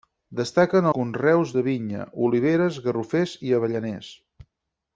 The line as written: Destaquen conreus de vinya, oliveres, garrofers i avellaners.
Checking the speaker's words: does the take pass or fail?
pass